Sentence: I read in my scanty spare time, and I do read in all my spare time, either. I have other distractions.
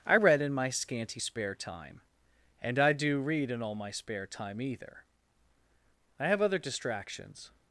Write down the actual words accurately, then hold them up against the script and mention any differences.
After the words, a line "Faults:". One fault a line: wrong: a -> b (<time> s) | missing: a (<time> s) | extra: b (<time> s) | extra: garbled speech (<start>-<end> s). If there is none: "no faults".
I read in my scanty spare time, and I do read in all my spare time, either. I have other distractions.
Faults:
no faults